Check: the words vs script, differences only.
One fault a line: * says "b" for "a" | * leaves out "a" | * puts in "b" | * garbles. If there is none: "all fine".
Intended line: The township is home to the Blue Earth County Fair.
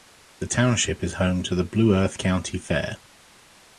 all fine